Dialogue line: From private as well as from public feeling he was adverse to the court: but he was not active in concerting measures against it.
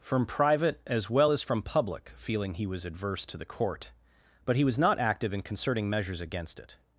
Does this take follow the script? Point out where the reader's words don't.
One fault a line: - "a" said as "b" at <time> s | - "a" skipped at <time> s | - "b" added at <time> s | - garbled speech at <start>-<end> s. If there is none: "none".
none